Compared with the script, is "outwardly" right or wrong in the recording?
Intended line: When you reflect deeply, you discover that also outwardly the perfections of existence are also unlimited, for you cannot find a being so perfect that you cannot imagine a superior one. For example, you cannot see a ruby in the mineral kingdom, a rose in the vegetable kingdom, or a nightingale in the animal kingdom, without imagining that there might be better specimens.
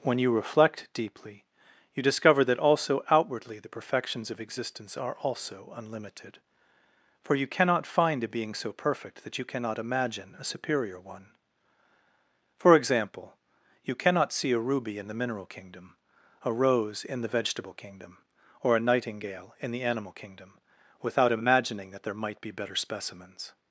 right